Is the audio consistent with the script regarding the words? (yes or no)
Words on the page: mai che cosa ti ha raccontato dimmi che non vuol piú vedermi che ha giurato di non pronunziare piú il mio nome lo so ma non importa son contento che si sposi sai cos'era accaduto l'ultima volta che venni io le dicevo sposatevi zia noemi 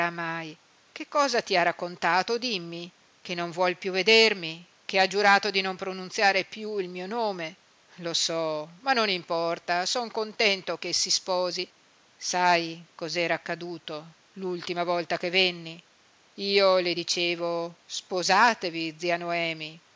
yes